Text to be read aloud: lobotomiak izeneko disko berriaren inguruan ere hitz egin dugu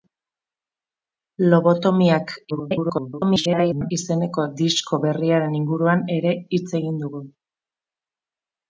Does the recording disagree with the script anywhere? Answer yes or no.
yes